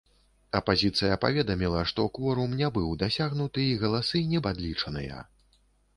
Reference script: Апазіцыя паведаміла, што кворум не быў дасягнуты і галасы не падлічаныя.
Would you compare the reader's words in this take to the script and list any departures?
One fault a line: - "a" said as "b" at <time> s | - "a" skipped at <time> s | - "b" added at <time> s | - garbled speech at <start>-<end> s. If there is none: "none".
none